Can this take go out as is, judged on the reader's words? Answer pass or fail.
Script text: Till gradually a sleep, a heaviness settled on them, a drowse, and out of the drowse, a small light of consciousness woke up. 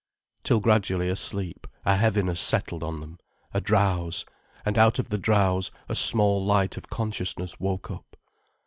pass